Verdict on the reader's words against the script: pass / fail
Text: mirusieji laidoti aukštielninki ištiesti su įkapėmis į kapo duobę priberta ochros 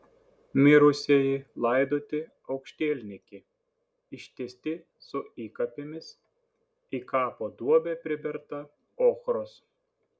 pass